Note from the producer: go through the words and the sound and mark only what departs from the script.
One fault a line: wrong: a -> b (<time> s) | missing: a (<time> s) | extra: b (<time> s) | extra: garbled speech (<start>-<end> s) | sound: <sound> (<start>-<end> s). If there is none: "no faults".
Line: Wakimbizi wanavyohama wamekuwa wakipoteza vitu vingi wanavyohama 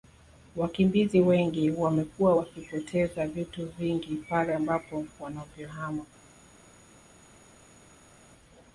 wrong: wanavyohama -> wengi (1.2 s)
extra: pale ambapo (4.1 s)